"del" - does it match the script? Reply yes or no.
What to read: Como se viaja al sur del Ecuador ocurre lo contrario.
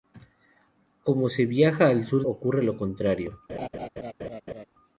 no